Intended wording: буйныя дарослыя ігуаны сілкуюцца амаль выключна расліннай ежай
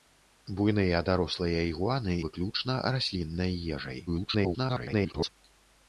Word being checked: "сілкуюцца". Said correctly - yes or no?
no